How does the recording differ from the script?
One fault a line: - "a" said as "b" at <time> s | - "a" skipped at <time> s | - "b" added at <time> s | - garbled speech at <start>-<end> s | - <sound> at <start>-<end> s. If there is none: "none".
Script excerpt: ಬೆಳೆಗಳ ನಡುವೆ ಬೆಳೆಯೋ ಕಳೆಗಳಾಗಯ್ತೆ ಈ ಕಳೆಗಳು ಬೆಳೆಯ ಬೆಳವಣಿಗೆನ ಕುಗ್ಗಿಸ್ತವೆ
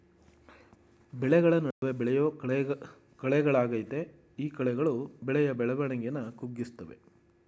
- dropout at 1.7-1.8 s